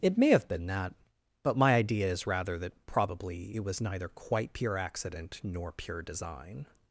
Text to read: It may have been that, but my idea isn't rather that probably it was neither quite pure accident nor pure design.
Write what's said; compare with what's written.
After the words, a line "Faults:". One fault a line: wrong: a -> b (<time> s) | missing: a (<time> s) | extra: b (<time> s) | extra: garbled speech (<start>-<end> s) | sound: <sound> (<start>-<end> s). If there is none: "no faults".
It may have been that, but my idea is rather that probably it was neither quite pure accident nor pure design.
Faults:
wrong: isn't -> is (2.1 s)